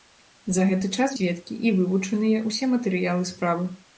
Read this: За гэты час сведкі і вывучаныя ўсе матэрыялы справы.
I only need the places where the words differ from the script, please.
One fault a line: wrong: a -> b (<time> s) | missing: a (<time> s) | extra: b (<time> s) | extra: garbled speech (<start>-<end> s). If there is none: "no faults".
no faults